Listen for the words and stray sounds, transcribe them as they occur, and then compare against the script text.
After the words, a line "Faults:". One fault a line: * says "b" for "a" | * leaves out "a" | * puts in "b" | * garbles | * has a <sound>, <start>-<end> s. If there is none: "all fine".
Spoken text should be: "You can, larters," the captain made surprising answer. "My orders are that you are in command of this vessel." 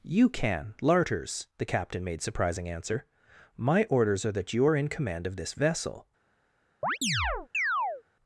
"You can, larters," the captain made surprising answer. "My orders are that you are in command of this vessel."
Faults:
* has a chirp, 6.8-8.0 s